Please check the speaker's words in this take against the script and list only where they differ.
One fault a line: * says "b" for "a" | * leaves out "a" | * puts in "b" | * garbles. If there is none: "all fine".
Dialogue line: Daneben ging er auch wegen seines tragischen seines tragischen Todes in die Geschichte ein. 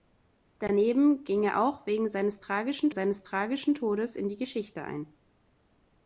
all fine